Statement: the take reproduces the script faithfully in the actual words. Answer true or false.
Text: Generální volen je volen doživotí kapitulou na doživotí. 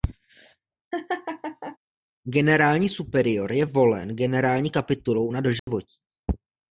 false